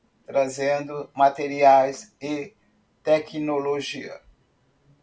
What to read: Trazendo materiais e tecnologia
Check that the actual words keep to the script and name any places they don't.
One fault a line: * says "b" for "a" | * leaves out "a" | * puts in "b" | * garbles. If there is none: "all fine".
all fine